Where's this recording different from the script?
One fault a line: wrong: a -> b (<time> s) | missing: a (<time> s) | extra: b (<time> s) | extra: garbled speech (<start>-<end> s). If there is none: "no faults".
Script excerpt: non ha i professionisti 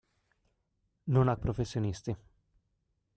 no faults